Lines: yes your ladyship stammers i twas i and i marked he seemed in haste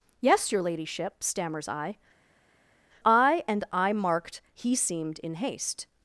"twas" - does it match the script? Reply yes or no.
no